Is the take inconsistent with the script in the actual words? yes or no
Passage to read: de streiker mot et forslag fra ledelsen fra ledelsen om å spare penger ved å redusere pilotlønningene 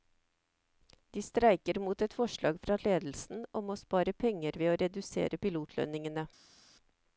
yes